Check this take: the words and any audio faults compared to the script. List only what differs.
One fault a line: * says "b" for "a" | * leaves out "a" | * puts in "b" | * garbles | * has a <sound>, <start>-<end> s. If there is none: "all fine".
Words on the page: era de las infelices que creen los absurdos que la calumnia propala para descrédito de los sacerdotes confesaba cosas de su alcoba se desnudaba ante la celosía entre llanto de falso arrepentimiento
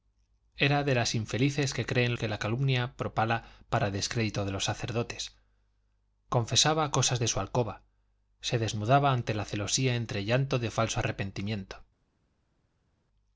* leaves out "los absurdos"